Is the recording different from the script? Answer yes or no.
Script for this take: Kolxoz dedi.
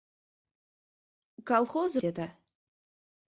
no